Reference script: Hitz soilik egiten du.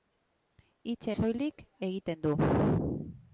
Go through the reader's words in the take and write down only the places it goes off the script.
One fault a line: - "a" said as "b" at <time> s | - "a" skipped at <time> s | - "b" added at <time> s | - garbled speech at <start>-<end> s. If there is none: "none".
none